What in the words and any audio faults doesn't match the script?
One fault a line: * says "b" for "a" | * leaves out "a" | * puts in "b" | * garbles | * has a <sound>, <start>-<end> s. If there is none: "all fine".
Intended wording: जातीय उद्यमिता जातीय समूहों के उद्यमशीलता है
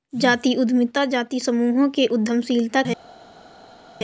all fine